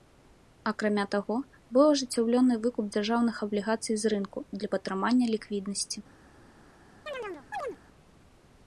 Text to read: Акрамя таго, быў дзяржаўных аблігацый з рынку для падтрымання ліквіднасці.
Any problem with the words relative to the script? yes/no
yes